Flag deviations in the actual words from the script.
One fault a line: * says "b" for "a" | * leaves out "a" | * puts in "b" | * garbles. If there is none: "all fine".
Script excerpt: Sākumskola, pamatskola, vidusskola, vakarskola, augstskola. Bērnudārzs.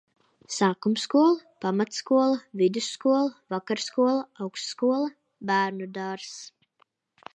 all fine